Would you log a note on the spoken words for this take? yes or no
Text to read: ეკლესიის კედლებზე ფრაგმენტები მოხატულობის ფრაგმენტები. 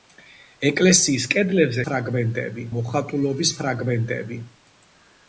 no